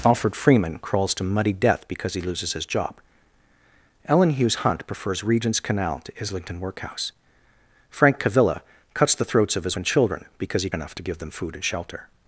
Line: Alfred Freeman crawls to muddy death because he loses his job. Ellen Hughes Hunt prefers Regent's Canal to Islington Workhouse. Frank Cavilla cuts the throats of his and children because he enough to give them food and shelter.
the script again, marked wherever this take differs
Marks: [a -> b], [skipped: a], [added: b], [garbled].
Alfred Freeman crawls to muddy death because he loses his job. Ellen Hughes Hunt prefers Regent's Canal to Islington Workhouse. Frank Cavilla cuts the throats of his and children because he enough to give them food and shelter.